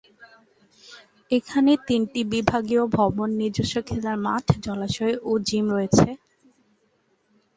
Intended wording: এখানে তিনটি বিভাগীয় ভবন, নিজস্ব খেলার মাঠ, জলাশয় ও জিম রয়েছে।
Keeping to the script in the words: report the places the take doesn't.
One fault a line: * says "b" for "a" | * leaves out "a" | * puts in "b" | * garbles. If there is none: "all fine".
all fine